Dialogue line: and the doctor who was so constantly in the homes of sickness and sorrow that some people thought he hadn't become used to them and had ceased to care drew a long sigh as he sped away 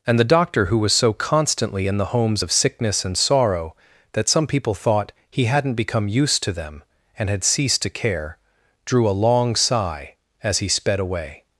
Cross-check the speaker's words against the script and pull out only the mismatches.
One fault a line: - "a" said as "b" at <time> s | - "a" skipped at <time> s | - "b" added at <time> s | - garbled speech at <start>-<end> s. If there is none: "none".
none